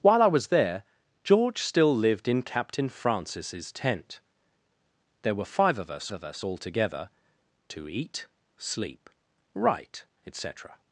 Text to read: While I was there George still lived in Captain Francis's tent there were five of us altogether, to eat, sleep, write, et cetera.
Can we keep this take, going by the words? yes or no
no